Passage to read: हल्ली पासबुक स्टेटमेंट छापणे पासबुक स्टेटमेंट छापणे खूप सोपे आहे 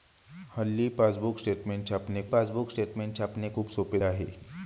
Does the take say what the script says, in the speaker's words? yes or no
yes